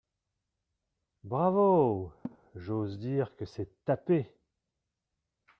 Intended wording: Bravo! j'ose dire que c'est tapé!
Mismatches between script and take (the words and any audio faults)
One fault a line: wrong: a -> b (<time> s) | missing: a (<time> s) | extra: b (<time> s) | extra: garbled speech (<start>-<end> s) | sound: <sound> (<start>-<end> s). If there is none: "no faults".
sound: laugh (2.2-2.4 s)